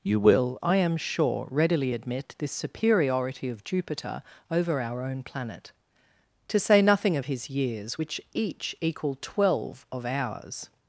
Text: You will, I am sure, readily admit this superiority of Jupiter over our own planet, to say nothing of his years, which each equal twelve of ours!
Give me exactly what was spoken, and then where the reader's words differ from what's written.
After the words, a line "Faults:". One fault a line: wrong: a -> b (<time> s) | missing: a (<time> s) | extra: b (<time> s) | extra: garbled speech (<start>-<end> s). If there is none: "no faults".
You will, I am sure, readily admit this superiority of Jupiter over our own planet, to say nothing of his years, which each equal twelve of ours!
Faults:
no faults